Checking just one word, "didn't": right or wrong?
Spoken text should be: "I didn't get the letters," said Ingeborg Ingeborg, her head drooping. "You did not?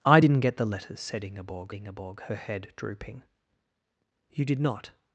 right